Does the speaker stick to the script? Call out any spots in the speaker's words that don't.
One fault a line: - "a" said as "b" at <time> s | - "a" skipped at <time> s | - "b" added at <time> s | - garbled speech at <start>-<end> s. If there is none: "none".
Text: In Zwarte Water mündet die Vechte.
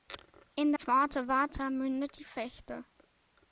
none